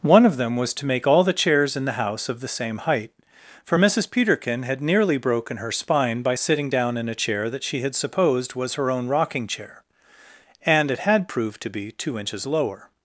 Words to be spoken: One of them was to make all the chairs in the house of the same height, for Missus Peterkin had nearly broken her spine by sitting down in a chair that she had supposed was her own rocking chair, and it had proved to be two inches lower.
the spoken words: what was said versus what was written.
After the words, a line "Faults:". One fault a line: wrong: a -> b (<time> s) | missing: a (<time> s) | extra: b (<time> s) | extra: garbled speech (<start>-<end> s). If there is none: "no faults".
One of them was to make all the chairs in the house of the same height, for Missus Peterkin had nearly broken her spine by sitting down in a chair that she had supposed was her own rocking chair, and it had proved to be two inches lower.
Faults:
no faults